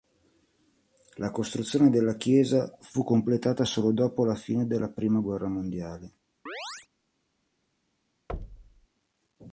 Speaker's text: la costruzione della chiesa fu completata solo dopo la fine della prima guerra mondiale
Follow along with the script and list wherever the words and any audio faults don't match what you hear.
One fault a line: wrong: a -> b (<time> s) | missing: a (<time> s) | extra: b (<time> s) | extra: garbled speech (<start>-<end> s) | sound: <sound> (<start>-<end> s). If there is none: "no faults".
sound: chirp (6.5-6.9 s)
sound: thud (8.3-8.9 s)